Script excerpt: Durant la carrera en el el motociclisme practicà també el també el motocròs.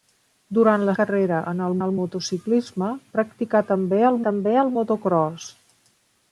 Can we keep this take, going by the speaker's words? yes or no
yes